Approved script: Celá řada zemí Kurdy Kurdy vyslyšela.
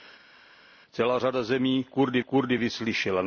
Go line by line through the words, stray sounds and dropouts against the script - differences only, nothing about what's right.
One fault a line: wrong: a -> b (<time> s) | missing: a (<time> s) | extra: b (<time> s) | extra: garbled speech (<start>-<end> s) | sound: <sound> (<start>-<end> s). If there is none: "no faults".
no faults